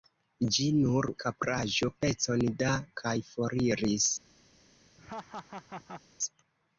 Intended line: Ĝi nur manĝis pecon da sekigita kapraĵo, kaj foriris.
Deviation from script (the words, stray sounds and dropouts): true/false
true